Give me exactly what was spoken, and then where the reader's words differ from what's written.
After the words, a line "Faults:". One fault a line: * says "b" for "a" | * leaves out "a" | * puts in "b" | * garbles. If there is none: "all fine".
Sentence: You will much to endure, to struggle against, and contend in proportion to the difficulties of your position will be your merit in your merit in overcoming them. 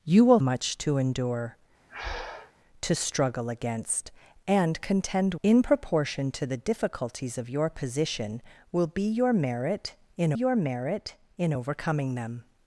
You will much to endure, to struggle against, and contend in proportion to the difficulties of your position will be your merit in your merit in overcoming them.
Faults:
all fine